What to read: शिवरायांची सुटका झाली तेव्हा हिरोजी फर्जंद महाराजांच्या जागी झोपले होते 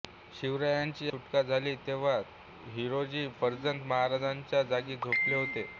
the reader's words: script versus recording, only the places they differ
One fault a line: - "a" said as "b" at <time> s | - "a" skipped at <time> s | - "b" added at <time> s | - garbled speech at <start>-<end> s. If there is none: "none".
none